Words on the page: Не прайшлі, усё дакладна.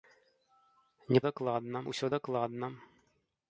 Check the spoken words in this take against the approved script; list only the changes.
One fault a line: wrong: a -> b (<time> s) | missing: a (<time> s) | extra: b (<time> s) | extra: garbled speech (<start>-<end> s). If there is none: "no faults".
wrong: прайшлі -> дакладна (1.3 s)